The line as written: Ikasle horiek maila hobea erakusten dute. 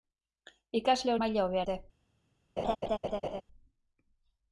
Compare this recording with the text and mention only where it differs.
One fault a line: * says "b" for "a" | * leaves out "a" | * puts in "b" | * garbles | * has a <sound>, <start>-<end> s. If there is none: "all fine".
* leaves out "horiek"
* leaves out "erakusten"
* has a laugh, 2.6-3.4 s